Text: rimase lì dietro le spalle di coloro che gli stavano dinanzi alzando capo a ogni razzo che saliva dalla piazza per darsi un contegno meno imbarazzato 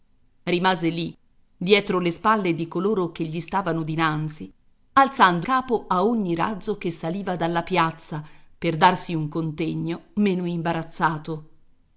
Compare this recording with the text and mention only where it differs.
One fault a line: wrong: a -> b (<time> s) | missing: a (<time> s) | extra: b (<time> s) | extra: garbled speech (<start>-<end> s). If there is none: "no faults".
no faults